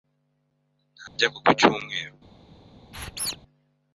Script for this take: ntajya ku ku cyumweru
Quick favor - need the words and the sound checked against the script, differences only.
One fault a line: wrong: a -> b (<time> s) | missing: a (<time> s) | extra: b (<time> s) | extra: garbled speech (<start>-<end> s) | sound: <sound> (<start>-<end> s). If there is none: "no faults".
sound: dropout (1.1-1.2 s)
sound: squeak (2.9-3.4 s)